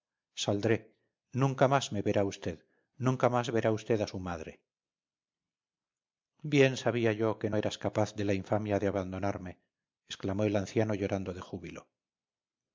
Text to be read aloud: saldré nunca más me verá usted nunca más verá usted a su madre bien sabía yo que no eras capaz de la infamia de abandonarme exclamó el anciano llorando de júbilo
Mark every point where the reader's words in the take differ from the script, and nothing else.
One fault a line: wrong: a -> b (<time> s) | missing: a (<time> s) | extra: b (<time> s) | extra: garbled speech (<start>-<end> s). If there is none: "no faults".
missing: no (7.5 s)